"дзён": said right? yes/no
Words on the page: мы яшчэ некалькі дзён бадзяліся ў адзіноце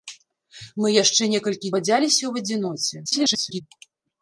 no